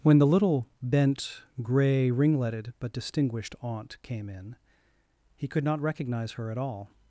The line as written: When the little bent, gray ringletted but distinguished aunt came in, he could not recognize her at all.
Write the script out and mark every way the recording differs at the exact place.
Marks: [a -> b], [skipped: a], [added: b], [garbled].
When the little bent, gray ringletted but distinguished aunt came in, he could not recognize her at all.